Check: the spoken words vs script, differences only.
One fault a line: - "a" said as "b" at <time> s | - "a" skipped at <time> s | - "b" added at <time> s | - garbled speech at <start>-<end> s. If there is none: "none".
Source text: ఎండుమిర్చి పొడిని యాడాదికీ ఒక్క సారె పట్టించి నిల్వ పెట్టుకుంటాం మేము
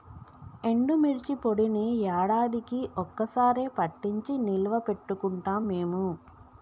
none